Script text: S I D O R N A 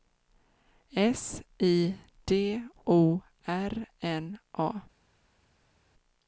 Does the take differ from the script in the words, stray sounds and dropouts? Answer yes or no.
no